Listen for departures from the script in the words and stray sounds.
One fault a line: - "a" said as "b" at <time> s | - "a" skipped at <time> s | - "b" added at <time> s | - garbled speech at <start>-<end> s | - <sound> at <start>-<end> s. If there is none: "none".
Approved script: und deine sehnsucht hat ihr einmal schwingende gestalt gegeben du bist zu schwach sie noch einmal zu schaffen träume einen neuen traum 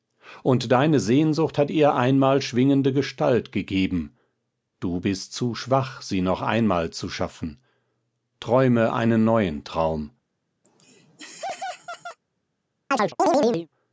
- laugh at 10.6-12.2 s
- chirp at 12.9-13.7 s